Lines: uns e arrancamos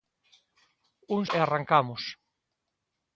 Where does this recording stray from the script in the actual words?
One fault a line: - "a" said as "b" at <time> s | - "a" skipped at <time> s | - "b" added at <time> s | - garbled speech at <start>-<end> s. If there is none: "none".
none